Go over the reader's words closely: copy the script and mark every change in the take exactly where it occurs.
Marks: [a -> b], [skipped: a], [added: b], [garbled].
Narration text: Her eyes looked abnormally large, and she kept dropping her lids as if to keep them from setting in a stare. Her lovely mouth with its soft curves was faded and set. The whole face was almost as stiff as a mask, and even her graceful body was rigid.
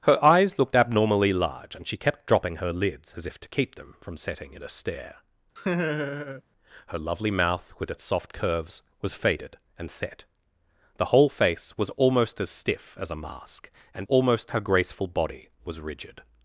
Her eyes looked abnormally large, and she kept dropping her lids as if to keep them from setting in a stare. Her lovely mouth with its soft curves was faded and set. The whole face was almost as stiff as a mask, and [even -> almost] her graceful body was rigid.